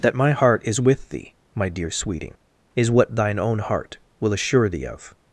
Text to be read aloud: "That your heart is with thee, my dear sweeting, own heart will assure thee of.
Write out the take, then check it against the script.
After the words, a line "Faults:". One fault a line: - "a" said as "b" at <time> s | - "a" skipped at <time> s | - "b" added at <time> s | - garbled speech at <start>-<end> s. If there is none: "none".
"That my heart is with thee, my dear sweeting, is what thine own heart will assure thee of.
Faults:
- "your" said as "my" at 0.1 s
- "is what thine" added at 2.8 s